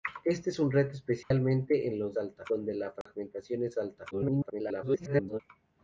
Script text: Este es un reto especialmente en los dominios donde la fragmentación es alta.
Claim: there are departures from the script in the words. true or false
true